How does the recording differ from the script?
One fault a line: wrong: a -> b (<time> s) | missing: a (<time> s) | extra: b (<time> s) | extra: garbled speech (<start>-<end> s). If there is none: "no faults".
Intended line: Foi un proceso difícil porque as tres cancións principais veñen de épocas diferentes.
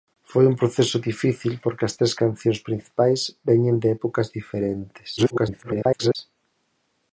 extra: garbled speech (5.2-6.2 s)